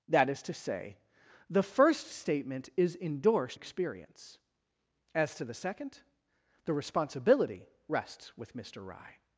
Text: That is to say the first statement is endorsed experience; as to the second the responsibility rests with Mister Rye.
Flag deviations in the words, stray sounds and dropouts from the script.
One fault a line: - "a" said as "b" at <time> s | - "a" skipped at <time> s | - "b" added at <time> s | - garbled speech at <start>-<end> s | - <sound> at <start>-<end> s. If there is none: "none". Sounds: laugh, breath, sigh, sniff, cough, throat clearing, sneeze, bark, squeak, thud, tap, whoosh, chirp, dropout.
none